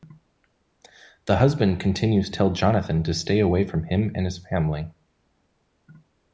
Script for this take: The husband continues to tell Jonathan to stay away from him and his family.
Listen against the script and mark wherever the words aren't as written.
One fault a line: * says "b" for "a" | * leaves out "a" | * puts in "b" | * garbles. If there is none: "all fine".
* leaves out "to"